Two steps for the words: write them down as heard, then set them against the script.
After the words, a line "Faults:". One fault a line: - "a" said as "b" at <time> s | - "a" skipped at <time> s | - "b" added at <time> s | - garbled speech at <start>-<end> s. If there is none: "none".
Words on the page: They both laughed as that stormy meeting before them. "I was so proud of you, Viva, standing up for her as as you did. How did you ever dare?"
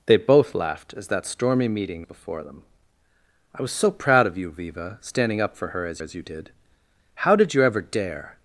They both laughed as that stormy meeting before them. "I was so proud of you, Viva, standing up for her as as you did. How did you ever dare?"
Faults:
none